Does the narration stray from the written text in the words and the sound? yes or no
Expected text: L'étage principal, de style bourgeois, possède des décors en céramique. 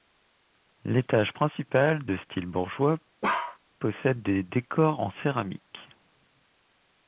yes